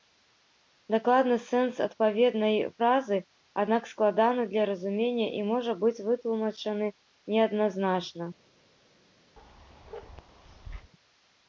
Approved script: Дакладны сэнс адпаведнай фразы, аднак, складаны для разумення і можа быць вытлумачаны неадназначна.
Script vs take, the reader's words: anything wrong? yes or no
no